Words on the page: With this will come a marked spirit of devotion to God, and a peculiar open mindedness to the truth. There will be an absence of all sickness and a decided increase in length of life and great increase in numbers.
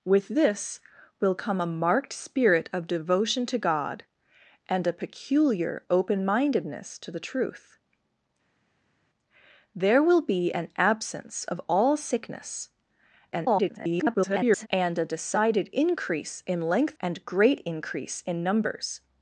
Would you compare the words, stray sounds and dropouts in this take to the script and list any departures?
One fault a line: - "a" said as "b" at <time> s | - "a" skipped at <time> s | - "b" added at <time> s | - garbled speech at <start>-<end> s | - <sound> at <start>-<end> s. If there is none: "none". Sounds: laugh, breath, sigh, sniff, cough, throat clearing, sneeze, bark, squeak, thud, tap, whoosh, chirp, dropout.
- garbled speech at 13.3-14.7 s
- "of life" skipped at 17.0 s